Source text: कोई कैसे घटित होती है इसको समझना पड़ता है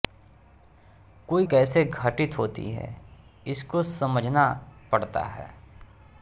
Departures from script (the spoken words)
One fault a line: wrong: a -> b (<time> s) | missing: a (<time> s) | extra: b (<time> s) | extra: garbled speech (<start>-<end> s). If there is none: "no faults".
no faults